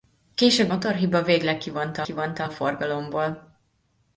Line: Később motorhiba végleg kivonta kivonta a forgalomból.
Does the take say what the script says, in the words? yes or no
yes